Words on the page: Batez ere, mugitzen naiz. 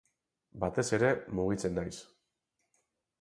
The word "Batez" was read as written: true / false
true